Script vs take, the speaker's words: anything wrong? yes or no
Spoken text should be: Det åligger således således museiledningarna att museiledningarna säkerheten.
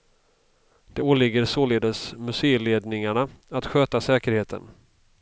yes